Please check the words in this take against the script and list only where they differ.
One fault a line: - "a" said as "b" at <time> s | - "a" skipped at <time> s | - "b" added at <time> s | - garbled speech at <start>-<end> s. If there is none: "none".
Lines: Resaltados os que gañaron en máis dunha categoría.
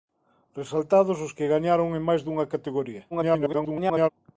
- garbled speech at 3.1-4.1 s